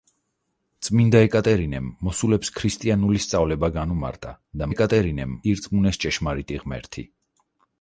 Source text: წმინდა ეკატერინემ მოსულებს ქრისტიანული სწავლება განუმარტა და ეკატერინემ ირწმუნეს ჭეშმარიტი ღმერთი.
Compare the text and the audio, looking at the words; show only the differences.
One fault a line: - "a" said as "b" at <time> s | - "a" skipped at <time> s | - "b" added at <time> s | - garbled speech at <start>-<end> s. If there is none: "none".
none